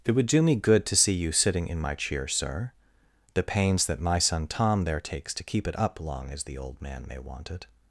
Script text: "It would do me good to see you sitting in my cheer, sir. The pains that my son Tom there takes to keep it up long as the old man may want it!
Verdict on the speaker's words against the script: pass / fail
pass